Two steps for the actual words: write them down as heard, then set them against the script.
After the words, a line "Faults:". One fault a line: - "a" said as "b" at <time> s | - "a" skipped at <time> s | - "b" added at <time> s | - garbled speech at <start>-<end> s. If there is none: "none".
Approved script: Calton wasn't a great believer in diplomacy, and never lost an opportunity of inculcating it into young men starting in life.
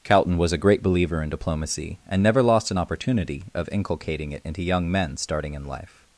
Calton was a great believer in diplomacy, and never lost an opportunity of inculcating it into young men starting in life.
Faults:
- "wasn't" said as "was" at 0.4 s